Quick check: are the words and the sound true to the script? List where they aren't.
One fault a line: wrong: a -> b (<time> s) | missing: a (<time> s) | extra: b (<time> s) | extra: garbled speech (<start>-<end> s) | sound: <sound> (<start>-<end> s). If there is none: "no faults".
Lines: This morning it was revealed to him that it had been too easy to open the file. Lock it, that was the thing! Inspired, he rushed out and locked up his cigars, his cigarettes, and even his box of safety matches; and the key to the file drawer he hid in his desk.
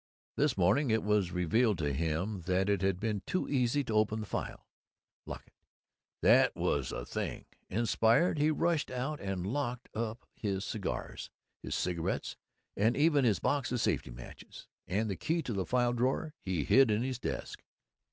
no faults